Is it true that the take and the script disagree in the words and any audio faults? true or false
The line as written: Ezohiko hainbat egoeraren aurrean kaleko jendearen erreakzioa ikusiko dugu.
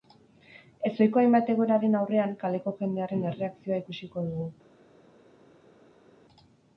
false